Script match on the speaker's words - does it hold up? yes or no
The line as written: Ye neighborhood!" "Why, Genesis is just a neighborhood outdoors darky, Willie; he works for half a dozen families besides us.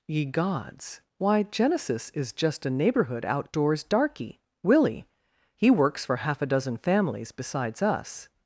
no